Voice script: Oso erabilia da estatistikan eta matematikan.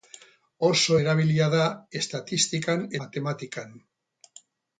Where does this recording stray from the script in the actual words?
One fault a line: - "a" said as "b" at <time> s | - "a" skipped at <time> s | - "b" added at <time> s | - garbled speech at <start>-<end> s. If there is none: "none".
- "eta" skipped at 2.9 s